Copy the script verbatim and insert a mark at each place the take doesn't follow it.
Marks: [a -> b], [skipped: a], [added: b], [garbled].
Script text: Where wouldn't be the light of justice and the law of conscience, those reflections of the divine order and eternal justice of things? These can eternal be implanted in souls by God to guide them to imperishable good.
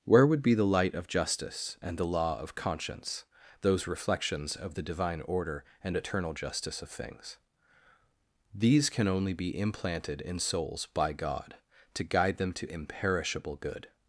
Where [wouldn't -> would] be the light of justice and the law of conscience, those reflections of the divine order and eternal justice of things? These can [eternal -> only] be implanted in souls by God to guide them to imperishable good.